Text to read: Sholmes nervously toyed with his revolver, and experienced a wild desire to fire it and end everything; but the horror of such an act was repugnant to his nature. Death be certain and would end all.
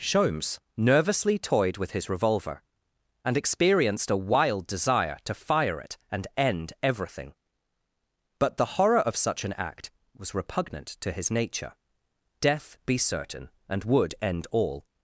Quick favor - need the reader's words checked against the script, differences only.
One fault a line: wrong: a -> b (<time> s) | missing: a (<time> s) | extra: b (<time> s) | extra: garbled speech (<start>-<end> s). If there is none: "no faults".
no faults